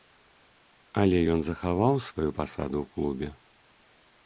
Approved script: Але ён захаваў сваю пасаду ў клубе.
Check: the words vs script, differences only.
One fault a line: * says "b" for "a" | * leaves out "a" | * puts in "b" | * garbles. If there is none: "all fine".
all fine